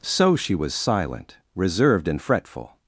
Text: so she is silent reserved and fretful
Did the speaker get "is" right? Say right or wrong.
wrong